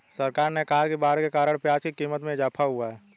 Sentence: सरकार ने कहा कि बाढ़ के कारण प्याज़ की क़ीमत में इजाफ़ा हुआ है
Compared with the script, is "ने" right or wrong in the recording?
right